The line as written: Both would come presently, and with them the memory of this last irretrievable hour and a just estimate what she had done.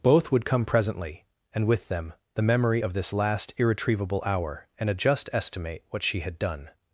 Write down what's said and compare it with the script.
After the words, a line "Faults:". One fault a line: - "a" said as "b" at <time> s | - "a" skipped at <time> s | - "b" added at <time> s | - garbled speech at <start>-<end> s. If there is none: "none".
Both would come presently, and with them the memory of this last irretrievable hour and a just estimate what she had done.
Faults:
none